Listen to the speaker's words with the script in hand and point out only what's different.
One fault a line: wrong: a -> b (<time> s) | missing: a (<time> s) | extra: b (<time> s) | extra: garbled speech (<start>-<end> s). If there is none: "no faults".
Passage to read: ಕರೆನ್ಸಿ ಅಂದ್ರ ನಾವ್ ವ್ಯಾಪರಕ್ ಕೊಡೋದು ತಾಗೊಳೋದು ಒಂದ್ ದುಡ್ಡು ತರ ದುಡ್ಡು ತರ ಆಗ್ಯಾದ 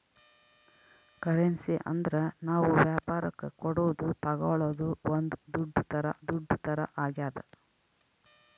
no faults